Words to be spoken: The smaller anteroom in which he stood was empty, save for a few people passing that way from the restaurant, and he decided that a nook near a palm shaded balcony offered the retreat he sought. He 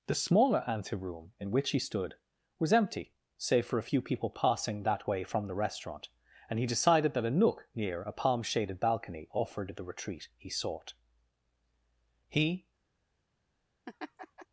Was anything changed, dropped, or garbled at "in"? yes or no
no